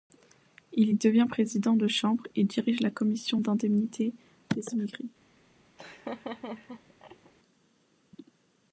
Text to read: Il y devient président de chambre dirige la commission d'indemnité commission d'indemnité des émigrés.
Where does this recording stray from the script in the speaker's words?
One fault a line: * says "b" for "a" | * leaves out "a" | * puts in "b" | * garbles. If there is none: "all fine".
* puts in "et"
* leaves out "commission d'indemnité"